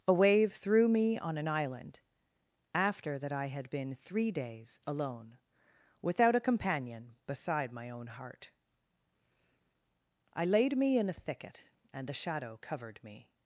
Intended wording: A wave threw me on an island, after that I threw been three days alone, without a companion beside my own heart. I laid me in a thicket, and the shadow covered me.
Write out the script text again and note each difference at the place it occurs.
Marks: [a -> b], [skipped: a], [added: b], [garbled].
A wave threw me on an island, after that I [threw -> had] been three days alone, without a companion beside my own heart. I laid me in a thicket, and the shadow covered me.